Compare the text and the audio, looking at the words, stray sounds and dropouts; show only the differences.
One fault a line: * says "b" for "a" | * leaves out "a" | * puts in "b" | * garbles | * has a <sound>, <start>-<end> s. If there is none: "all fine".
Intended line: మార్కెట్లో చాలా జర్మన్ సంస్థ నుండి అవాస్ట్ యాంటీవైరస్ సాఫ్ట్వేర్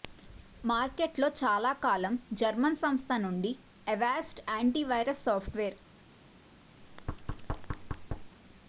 * puts in "కాలం"
* has a thud, 6.8-8.4 s